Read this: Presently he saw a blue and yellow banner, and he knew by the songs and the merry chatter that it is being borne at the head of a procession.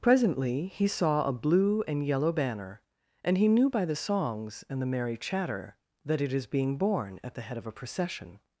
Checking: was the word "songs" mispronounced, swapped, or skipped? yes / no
no